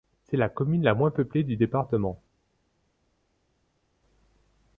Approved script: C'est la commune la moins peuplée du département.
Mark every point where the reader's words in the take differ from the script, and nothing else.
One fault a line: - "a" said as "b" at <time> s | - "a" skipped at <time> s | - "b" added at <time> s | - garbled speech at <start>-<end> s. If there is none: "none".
none